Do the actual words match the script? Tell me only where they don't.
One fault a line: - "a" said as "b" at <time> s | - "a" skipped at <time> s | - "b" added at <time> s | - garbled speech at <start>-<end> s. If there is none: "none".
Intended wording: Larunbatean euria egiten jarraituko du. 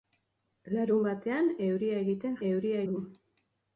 - "jarraituko" said as "euria" at 2.5 s